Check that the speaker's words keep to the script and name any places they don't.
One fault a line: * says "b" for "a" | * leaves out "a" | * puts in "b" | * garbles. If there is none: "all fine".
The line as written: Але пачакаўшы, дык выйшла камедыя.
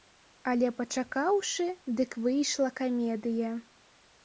all fine